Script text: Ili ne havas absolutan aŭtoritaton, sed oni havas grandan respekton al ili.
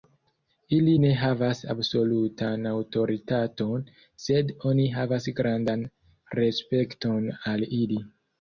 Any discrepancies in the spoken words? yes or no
no